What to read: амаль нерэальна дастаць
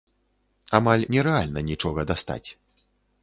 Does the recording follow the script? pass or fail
fail